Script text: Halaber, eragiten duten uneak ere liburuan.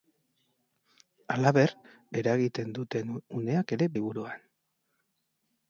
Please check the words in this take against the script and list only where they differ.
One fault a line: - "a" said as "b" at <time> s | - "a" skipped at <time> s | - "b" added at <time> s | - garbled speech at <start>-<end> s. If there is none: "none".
none